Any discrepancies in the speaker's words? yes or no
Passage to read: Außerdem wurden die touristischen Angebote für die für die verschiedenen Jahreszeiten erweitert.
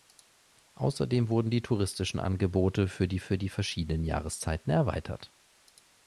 no